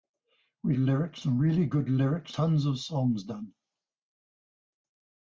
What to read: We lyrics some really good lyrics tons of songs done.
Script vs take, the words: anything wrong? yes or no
no